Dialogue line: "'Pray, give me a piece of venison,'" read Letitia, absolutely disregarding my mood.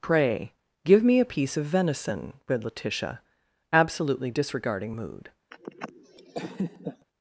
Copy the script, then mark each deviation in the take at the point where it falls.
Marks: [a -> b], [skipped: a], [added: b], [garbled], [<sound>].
"'Pray, give me a piece of venison,'" read Letitia, absolutely disregarding [skipped: my] mood. [laugh]